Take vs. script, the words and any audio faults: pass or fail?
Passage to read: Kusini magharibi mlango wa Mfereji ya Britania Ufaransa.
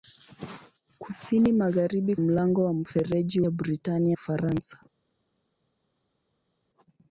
pass